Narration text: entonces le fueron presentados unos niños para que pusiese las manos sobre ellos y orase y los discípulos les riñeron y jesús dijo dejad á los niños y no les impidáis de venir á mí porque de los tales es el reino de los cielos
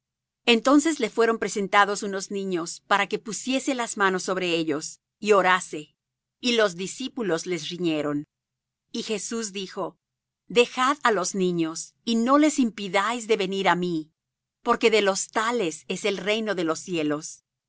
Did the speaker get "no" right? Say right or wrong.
right